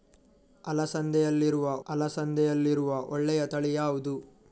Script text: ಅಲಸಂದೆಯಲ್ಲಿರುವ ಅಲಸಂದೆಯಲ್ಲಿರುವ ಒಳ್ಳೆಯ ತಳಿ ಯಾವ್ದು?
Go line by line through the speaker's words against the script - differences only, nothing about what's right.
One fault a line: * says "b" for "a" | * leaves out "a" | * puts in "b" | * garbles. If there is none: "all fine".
all fine